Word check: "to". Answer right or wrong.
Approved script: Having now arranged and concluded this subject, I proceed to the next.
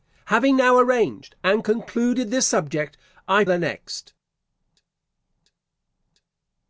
wrong